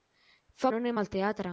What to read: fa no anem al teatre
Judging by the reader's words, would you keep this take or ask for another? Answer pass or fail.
pass